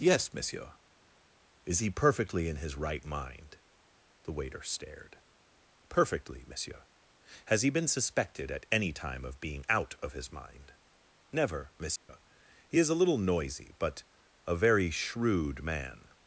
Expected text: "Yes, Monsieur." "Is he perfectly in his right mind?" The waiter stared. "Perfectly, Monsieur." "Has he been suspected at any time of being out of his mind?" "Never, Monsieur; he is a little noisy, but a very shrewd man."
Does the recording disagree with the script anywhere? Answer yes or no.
no